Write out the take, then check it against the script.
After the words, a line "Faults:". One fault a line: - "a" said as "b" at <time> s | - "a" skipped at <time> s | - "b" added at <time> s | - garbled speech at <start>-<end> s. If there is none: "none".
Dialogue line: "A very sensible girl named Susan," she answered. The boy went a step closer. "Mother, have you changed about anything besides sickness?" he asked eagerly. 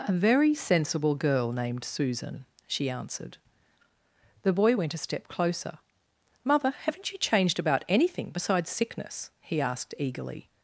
"A very sensible girl named Susan," she answered. The boy went a step closer. "Mother, haven't you changed about anything besides sickness?" he asked eagerly.
Faults:
- "have" said as "haven't" at 6.8 s